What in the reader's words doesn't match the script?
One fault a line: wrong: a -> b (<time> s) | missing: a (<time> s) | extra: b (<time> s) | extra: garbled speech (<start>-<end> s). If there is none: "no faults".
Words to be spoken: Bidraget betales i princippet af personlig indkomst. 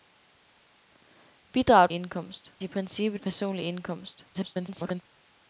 wrong: betales -> indkomst (1.9 s)
missing: af (3.2 s)
extra: garbled speech (4.3-5.0 s)